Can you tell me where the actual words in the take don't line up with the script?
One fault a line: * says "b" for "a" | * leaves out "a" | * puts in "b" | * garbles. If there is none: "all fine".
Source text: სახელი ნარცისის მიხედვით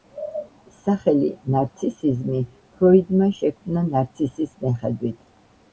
* puts in "ნარცისიზმი ფროიდმა შექმნა"